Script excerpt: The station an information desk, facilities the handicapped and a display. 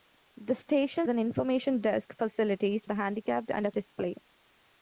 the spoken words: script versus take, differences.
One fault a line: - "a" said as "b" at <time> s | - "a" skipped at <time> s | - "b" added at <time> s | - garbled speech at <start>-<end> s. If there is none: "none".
none